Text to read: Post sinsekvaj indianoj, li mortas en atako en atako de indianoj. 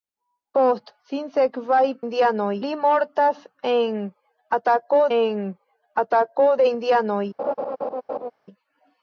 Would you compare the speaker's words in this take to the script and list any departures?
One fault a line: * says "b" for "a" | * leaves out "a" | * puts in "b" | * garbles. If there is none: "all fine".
all fine